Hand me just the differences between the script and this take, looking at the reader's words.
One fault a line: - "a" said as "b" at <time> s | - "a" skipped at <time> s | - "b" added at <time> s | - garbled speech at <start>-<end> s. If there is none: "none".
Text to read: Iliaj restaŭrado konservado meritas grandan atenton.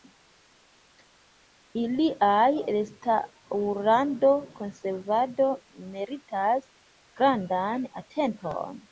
none